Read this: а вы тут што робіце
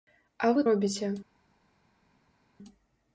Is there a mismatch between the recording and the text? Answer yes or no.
yes